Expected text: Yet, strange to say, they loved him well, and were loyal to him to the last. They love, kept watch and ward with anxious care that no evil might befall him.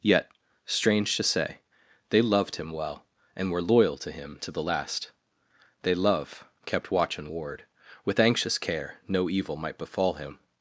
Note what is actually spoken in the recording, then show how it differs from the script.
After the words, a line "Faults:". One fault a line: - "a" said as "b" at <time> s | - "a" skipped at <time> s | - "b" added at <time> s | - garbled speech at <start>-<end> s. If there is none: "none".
Yet, strange to say, they loved him well, and were loyal to him to the last. They love, kept watch and ward with anxious care no evil might befall him.
Faults:
- "that" skipped at 8.9 s